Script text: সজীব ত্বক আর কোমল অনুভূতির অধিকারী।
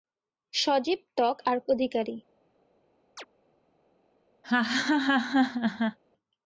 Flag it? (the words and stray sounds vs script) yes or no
yes